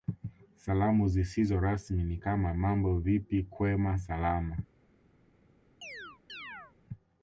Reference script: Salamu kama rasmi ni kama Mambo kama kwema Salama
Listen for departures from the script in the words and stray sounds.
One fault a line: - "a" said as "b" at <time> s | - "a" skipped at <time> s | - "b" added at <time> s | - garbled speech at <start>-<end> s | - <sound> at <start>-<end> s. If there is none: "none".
- "kama" said as "zisizo" at 1.1 s
- "kama" said as "vipi" at 3.0 s
- chirp at 5.8-6.7 s